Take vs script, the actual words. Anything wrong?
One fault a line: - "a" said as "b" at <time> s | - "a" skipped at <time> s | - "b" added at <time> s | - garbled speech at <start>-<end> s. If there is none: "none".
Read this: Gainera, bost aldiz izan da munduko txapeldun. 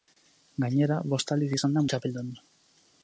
- "munduko" skipped at 1.8 s